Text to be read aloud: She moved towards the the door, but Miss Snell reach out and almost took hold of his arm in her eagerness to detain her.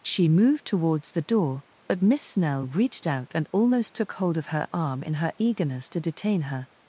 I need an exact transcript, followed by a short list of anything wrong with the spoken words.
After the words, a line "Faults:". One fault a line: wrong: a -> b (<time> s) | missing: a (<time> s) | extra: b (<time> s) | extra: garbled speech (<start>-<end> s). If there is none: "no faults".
She moved towards the door, but Miss Snell reached out and almost took hold of her arm in her eagerness to detain her.
Faults:
missing: the (1.2 s)
wrong: reach -> reached (2.7 s)
wrong: his -> her (4.5 s)